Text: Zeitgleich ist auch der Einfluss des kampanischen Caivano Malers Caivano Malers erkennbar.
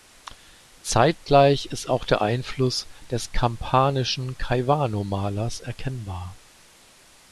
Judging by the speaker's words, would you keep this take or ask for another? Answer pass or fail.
fail